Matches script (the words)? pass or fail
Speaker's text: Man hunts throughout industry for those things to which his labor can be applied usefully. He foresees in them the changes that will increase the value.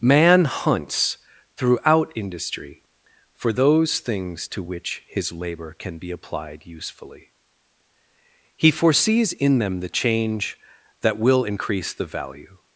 fail